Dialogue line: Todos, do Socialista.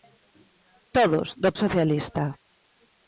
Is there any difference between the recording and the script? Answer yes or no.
no